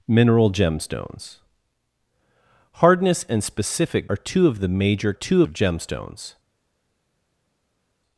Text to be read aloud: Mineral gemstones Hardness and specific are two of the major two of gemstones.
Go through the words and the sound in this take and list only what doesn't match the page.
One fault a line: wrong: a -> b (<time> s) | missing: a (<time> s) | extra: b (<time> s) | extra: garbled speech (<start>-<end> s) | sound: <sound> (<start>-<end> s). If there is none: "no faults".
no faults